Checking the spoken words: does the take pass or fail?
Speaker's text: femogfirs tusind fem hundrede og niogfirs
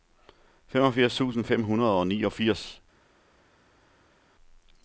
pass